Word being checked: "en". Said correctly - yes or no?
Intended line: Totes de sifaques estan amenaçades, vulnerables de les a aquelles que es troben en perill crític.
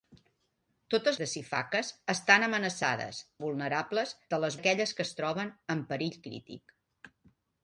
yes